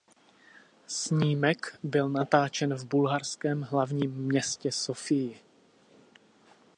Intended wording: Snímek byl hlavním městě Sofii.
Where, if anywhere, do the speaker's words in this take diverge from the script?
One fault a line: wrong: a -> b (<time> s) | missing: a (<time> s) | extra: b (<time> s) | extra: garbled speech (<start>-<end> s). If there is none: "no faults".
extra: natáčen v bulharském (2.1 s)